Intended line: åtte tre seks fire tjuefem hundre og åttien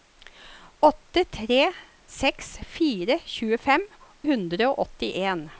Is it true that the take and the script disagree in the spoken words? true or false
false